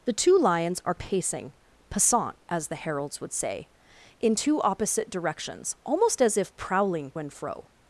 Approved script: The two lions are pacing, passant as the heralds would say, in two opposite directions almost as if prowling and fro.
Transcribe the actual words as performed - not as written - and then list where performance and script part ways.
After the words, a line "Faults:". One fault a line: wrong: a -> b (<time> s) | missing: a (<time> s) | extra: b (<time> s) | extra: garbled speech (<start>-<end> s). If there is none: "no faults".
The two lions are pacing, passant as the heralds would say, in two opposite directions almost as if prowling and fro.
Faults:
no faults